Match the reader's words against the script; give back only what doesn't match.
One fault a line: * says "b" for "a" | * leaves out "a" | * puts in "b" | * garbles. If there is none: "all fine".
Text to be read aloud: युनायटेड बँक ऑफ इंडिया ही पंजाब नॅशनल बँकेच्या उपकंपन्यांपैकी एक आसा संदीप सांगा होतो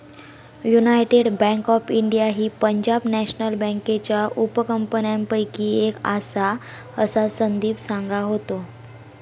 * puts in "असा"